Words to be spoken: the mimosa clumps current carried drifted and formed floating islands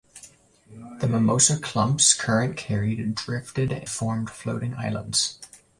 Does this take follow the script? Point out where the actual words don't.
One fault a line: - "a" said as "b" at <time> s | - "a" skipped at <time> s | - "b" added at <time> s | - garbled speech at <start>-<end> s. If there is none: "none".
- "and" skipped at 3.9 s